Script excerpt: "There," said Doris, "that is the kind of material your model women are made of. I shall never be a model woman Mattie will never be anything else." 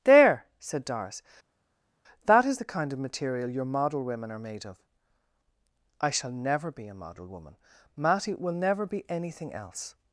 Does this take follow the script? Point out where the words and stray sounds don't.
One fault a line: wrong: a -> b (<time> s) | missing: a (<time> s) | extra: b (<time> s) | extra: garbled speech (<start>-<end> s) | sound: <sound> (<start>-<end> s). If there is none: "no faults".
no faults